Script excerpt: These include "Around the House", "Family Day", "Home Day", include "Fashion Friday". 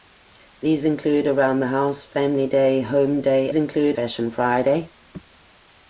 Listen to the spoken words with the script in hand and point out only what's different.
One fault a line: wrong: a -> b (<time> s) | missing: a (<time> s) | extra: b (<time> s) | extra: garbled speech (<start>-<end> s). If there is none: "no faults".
no faults